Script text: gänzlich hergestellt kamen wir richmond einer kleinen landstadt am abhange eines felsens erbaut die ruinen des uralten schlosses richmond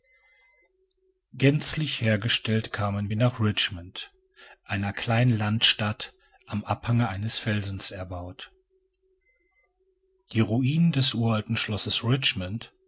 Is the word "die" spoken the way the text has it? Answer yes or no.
yes